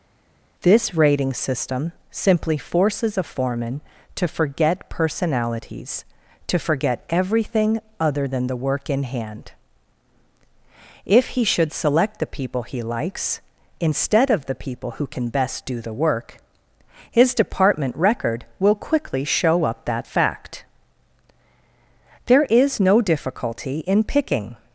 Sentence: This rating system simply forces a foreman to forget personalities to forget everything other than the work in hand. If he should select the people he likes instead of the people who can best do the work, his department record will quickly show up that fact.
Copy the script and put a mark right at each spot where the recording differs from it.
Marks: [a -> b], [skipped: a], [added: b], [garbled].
This rating system simply forces a foreman to forget personalities to forget everything other than the work in hand. If he should select the people he likes instead of the people who can best do the work, his department record will quickly show up that fact. [added: There is no difficulty in picking]